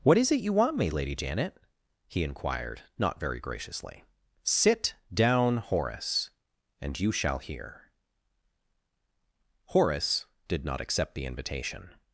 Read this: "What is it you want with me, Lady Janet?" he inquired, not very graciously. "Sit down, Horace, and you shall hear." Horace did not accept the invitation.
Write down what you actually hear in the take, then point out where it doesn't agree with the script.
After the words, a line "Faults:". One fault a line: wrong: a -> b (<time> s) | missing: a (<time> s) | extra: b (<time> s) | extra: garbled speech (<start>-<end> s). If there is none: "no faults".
"What is it you want me, Lady Janet?" he inquired, not very graciously. "Sit down, Horace, and you shall hear." Horace did not accept the invitation.
Faults:
missing: with (0.8 s)